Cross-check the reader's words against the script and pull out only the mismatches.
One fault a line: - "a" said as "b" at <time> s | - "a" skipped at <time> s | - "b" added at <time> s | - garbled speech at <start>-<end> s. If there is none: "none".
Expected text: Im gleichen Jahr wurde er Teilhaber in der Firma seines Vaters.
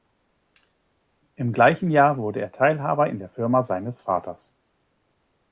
none